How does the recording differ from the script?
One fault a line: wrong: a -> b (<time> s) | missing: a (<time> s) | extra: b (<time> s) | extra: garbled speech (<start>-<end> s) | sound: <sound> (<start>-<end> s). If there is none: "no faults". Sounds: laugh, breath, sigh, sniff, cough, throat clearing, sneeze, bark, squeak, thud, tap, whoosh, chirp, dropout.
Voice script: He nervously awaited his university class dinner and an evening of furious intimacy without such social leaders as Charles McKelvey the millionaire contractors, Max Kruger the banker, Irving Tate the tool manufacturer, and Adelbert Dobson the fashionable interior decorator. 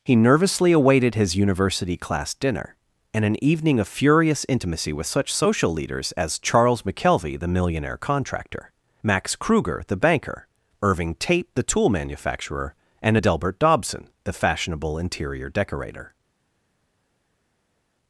wrong: without -> with (4.9 s)
wrong: contractors -> contractor (8.0 s)